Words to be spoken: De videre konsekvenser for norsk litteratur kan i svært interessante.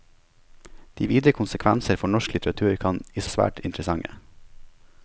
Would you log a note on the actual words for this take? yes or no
no